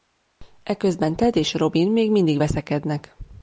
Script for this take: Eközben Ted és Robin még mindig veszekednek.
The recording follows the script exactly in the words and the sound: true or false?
true